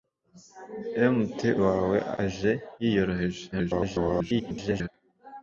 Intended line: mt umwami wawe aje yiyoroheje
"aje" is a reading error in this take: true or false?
false